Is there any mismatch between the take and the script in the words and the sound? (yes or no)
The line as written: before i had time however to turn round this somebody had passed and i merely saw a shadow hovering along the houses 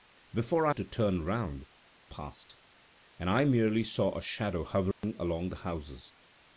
yes